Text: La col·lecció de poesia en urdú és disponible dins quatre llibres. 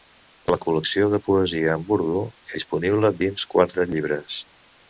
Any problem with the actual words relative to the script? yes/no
yes